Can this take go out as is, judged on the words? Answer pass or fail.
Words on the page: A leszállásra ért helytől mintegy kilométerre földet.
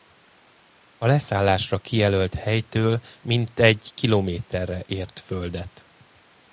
fail